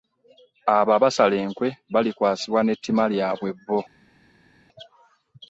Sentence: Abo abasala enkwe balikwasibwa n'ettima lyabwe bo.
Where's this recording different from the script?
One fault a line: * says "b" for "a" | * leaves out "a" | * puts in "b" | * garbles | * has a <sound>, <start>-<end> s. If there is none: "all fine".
all fine